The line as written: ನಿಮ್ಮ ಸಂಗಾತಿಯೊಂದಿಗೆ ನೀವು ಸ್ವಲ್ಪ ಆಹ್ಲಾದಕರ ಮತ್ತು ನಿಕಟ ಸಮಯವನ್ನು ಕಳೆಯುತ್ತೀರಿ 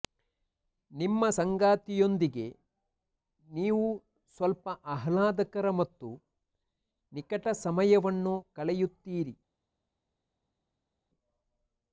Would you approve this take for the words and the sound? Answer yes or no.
yes